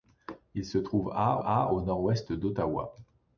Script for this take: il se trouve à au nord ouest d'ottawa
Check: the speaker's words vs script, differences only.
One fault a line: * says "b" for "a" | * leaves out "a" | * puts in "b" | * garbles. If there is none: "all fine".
* puts in "à"